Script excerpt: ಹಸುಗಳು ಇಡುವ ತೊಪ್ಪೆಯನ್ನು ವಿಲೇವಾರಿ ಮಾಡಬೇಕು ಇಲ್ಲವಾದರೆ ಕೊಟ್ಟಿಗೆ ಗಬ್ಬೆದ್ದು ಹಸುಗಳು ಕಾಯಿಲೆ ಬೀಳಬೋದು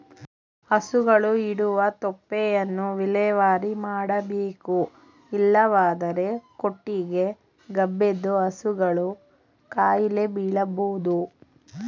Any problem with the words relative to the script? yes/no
no